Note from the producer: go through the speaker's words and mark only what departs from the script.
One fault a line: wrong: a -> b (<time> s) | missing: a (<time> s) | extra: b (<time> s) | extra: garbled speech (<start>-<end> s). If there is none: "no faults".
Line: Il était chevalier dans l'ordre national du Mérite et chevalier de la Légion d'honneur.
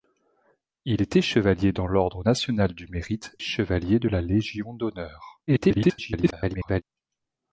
missing: et (3.4 s)
extra: garbled speech (5.5-6.8 s)